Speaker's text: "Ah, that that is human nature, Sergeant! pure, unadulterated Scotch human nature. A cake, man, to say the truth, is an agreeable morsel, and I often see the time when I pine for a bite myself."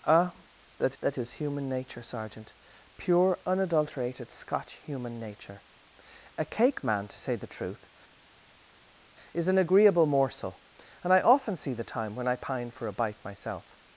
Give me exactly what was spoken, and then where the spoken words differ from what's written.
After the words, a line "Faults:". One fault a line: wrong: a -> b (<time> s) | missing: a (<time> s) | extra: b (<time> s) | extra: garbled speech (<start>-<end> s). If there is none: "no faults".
"Ah, that that is human nature, Sergeant! pure, unadulterated Scotch human nature. A cake, man, to say the truth, is an agreeable morsel, and I often see the time when I pine for a bite myself."
Faults:
no faults